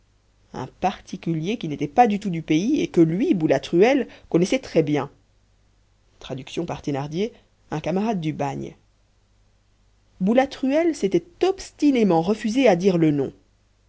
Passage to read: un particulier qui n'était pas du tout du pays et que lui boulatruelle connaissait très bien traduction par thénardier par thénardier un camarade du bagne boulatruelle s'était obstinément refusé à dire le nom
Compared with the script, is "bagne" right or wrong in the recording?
right